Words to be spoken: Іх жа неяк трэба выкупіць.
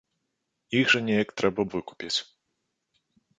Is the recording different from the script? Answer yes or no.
no